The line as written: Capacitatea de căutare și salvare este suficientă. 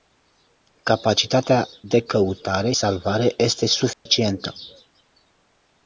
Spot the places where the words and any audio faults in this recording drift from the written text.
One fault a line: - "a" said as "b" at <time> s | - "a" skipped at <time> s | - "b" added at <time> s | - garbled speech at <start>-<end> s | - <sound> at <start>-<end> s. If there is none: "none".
- "și" skipped at 2.7 s
- dropout at 3.9-4.1 s